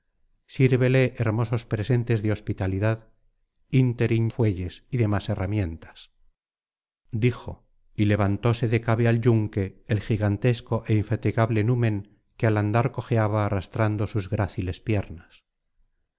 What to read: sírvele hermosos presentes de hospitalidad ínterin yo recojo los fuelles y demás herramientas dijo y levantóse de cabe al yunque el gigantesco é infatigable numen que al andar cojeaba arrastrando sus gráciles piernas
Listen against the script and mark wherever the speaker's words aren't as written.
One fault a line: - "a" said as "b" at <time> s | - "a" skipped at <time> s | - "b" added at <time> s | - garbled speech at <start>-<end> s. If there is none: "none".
- "yo recojo los" skipped at 4.3 s